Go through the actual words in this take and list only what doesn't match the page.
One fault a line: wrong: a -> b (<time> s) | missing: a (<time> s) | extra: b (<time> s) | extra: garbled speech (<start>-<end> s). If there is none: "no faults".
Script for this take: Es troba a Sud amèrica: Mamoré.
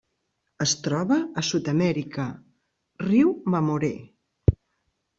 extra: riu (3.1 s)